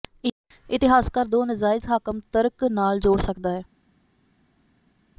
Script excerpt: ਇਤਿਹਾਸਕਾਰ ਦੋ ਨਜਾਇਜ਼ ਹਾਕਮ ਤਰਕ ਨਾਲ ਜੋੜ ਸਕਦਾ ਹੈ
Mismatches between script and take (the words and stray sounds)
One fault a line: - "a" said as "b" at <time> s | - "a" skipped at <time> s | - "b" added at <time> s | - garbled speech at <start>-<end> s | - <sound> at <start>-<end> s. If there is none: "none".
none